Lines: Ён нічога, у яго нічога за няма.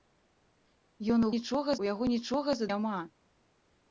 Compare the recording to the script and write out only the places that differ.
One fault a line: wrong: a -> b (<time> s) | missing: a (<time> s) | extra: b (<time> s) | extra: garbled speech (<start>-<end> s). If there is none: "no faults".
no faults